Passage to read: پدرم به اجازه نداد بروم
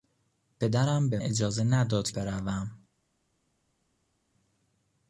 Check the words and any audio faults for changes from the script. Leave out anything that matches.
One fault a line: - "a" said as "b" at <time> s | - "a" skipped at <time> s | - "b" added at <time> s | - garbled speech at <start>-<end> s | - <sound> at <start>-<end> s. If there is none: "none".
none